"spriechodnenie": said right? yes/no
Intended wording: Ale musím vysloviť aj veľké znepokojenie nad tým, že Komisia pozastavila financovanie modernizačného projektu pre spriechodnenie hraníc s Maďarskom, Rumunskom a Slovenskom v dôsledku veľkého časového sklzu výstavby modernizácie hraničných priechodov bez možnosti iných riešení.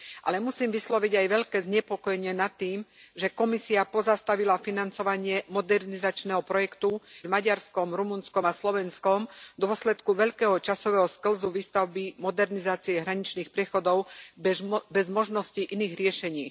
no